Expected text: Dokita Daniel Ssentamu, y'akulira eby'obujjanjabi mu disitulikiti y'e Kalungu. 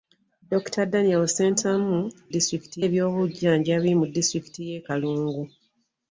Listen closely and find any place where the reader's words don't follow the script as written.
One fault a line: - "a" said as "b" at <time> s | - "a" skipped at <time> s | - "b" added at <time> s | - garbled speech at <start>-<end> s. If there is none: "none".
- "y'akulira" said as "disitulikiti" at 2.3 s